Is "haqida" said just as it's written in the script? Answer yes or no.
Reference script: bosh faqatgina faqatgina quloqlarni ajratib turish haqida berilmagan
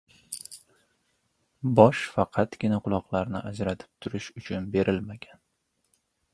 no